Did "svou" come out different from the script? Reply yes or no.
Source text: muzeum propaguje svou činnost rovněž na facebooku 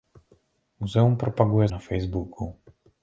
yes